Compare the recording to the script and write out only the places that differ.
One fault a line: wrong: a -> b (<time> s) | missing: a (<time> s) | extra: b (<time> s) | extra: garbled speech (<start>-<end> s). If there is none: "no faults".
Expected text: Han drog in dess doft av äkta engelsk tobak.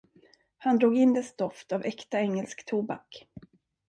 no faults